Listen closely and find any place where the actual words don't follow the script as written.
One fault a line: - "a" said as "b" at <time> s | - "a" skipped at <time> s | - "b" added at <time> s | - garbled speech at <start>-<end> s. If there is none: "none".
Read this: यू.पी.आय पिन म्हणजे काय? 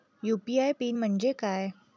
none